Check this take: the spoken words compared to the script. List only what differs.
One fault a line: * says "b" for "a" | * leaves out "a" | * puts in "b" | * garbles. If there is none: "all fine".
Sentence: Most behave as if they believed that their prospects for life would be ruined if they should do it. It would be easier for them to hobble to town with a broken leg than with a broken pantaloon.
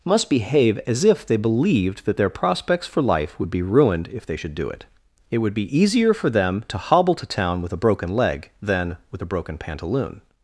* says "Must" for "Most"